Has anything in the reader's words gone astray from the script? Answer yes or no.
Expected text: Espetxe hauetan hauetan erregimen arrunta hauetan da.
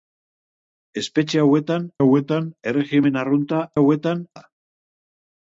no